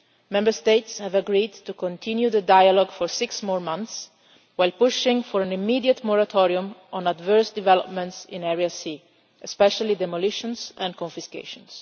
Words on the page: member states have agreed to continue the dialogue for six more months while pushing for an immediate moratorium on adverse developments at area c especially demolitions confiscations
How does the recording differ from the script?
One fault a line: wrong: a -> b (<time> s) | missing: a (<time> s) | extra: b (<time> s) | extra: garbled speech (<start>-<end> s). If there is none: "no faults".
wrong: at -> in (8.3 s)
extra: and (10.8 s)